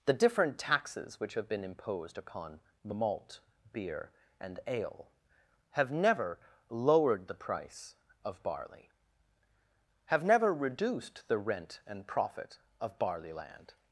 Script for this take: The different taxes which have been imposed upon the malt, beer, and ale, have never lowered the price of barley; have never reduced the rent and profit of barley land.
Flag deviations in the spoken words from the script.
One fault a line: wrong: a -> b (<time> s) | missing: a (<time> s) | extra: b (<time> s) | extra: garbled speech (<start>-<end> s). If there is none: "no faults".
no faults